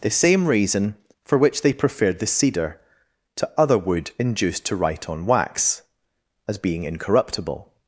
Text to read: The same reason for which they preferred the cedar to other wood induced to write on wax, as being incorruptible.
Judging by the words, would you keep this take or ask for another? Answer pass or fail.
pass